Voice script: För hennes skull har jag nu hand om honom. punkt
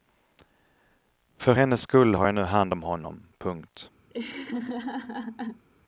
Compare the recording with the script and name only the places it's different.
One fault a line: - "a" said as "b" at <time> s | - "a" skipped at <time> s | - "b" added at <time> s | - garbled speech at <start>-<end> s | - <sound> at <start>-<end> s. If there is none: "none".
- laugh at 4.1-5.6 s